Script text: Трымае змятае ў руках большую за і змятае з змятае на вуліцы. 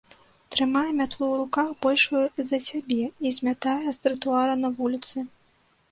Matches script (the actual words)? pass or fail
fail